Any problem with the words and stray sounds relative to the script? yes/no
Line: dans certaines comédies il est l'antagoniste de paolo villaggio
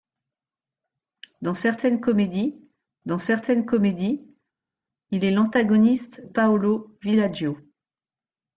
yes